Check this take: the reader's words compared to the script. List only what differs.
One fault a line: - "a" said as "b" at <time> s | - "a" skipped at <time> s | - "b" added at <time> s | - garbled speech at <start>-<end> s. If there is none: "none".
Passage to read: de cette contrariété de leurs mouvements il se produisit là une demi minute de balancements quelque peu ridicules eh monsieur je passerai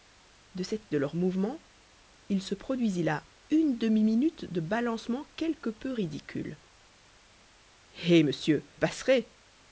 - "contrariété" skipped at 0.9 s
- "je" skipped at 8.6 s